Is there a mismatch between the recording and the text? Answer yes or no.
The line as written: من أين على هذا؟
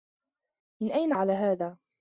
no